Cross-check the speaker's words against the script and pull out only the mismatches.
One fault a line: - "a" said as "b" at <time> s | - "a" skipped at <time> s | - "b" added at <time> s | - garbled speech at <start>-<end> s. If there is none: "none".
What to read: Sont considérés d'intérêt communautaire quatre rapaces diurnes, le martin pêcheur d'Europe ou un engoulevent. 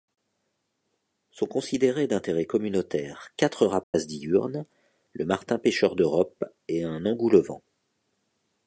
- "ou" said as "et" at 6.7 s